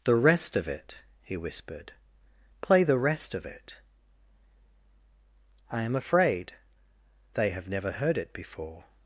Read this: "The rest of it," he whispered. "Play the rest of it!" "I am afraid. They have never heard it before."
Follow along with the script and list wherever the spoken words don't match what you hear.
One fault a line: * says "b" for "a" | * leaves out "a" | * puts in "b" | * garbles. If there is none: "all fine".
all fine